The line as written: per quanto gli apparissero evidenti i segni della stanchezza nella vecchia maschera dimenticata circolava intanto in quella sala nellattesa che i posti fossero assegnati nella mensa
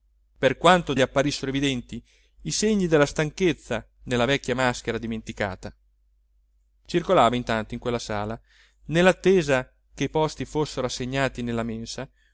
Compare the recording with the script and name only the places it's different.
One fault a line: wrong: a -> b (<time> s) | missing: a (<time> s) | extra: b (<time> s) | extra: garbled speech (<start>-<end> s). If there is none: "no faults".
no faults